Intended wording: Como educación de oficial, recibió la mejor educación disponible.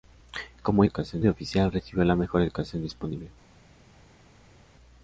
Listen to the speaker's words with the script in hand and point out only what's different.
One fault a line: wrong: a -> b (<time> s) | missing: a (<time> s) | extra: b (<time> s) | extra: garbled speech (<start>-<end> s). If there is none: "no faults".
no faults